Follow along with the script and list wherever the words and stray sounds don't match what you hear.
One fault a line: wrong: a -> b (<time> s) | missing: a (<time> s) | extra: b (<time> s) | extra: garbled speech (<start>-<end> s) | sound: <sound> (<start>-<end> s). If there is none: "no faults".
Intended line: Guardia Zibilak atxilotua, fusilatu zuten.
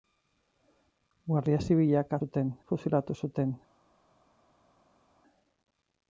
wrong: atxilotua -> zuten (2.2 s)